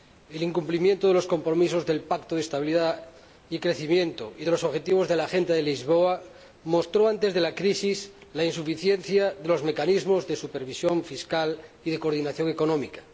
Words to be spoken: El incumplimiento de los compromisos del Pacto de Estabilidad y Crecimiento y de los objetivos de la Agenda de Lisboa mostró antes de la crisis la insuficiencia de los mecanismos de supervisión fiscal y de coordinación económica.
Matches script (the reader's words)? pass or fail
pass